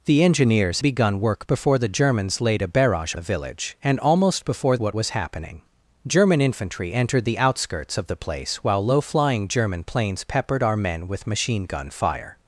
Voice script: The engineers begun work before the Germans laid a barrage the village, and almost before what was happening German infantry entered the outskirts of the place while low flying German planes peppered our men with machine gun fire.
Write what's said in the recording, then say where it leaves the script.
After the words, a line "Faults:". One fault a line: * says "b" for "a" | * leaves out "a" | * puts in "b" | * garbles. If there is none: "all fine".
The engineers begun work before the Germans laid a barrage the village, and almost before what was happening German infantry entered the outskirts of the place while low flying German planes peppered our men with machine gun fire.
Faults:
all fine